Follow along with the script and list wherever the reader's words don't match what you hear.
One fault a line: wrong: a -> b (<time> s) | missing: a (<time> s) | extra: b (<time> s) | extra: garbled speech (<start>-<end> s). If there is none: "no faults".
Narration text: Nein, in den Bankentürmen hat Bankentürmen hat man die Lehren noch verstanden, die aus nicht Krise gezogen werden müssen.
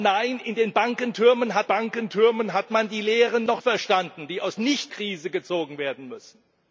no faults